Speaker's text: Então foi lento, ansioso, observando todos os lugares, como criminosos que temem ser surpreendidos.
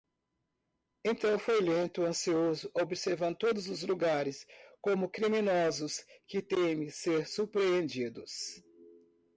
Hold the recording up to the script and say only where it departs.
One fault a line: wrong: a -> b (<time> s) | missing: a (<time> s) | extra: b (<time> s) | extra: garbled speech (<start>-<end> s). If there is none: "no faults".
no faults